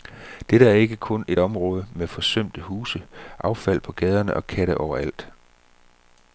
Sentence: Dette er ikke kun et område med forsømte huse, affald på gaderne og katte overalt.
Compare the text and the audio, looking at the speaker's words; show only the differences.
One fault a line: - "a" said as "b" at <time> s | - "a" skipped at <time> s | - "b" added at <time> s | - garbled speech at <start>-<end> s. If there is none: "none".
none